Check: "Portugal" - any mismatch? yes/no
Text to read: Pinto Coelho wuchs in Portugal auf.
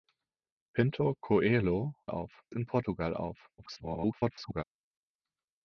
no